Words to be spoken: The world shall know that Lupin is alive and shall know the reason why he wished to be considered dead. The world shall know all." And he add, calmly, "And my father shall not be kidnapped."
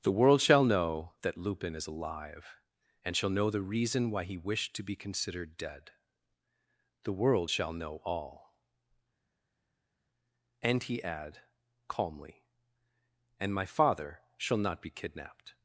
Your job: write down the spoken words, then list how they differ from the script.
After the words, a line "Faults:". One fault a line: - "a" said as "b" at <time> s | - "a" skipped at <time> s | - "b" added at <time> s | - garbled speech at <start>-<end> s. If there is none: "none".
The world shall know that Lupin is alive and shall know the reason why he wished to be considered dead. The world shall know all." And he add, calmly, "And my father shall not be kidnapped."
Faults:
none